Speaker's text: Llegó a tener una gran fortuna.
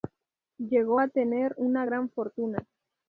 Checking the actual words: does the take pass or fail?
pass